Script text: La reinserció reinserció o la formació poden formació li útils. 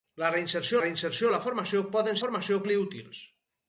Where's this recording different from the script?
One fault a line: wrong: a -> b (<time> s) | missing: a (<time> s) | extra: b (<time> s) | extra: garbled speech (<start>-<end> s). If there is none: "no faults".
no faults